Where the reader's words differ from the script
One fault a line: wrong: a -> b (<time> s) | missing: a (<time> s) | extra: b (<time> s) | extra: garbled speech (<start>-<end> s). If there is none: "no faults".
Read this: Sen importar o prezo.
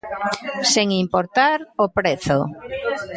no faults